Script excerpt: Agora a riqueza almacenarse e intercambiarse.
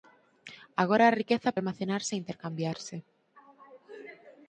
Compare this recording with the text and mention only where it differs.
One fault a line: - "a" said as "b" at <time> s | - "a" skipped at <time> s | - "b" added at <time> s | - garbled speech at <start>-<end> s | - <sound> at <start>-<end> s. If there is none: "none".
none